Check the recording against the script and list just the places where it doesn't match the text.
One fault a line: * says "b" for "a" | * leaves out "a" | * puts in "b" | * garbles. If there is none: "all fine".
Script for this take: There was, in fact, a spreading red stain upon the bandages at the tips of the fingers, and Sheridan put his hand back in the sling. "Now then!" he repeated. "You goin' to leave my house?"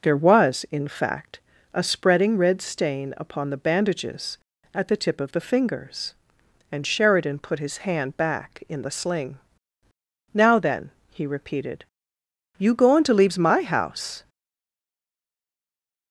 * says "tip" for "tips"
* says "leaves" for "leave"